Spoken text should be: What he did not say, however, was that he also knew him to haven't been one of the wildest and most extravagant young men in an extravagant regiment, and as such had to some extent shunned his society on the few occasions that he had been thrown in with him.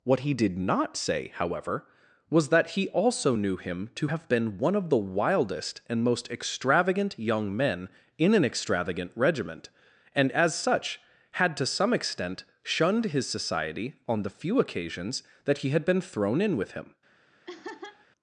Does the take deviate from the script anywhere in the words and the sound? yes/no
yes